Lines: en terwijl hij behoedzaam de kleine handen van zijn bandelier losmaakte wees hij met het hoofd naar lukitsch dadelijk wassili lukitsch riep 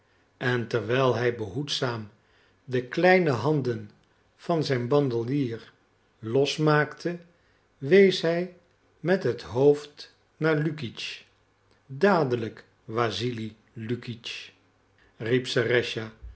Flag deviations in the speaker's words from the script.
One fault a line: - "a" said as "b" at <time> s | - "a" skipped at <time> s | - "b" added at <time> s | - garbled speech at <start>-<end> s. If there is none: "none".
none